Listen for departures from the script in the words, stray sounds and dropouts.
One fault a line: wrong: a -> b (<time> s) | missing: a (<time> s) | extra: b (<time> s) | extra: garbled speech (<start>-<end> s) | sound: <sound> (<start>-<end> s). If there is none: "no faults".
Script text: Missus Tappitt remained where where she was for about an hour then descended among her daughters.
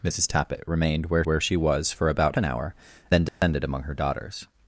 sound: dropout (3.3-3.4 s)